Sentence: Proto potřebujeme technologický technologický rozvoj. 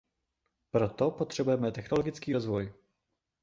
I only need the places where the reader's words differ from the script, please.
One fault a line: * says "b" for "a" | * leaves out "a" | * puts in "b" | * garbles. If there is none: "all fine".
* leaves out "technologický"